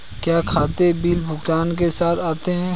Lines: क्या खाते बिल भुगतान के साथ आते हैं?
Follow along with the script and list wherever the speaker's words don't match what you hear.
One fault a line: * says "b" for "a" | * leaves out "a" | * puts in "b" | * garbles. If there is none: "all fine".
all fine